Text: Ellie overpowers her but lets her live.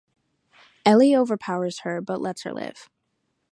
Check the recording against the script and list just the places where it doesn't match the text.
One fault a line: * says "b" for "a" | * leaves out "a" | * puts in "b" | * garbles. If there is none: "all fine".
all fine